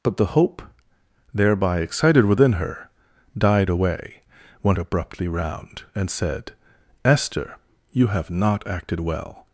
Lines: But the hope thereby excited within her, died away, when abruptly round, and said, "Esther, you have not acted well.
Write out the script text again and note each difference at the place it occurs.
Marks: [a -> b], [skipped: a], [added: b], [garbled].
But the hope thereby excited within her, died away, when abruptly round, and said, "Esther, you have not acted well.